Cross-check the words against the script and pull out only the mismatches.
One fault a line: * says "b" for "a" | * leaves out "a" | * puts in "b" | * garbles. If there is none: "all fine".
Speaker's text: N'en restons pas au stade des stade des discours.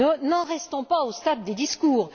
* leaves out "stade des"